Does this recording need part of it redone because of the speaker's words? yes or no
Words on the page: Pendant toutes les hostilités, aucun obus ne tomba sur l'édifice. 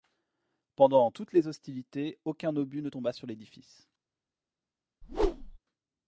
no